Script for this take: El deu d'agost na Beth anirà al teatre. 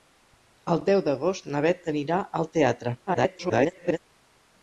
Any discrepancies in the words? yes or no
yes